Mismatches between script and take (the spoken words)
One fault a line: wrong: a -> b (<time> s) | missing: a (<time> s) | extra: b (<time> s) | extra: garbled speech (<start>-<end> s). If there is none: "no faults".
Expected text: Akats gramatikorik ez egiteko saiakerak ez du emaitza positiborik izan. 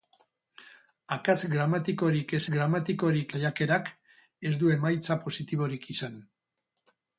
wrong: egiteko -> gramatikorik (2.5 s)